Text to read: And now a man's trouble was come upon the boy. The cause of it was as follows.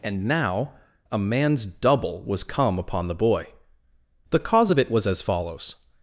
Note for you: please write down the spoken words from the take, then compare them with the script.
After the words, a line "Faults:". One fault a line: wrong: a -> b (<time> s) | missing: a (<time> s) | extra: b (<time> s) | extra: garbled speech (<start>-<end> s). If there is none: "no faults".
And now a man's double was come upon the boy. The cause of it was as follows.
Faults:
wrong: trouble -> double (1.6 s)